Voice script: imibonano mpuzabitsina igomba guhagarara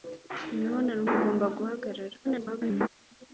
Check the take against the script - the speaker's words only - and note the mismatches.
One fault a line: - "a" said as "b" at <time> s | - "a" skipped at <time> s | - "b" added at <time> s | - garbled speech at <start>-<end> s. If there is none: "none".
- "mpuzabitsina" skipped at 1.0 s
- garbled speech at 2.2-2.9 s